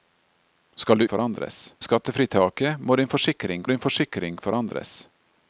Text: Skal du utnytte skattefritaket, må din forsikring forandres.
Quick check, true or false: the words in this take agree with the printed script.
false